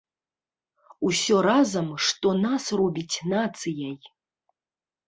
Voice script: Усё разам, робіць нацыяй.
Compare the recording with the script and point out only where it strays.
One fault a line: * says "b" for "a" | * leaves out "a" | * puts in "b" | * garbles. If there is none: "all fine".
* puts in "што нас"